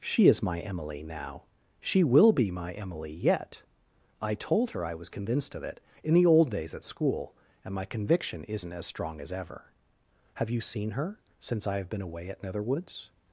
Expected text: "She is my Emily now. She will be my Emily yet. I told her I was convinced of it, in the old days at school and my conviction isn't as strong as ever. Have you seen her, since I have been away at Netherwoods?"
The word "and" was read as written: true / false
true